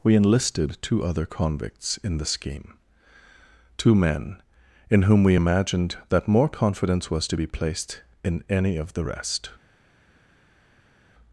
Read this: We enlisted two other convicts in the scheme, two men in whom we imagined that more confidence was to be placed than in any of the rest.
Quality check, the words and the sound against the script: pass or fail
fail